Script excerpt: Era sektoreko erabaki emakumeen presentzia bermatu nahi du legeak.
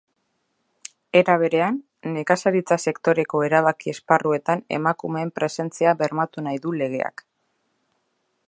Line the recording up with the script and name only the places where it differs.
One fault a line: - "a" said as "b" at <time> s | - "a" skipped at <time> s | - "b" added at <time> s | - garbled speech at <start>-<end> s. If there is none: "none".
- "berean nekazaritza" added at 1.4 s
- "esparruetan" added at 4.0 s